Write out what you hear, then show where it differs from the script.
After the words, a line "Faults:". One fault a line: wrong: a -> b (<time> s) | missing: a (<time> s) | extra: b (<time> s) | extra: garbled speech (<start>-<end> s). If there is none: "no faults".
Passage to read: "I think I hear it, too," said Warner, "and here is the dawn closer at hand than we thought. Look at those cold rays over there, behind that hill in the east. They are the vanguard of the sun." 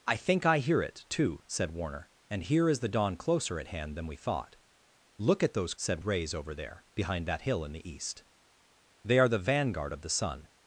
"I think I hear it, too," said Warner, "and here is the dawn closer at hand than we thought. Look at those said rays over there, behind that hill in the east. They are the vanguard of the sun."
Faults:
wrong: cold -> said (5.7 s)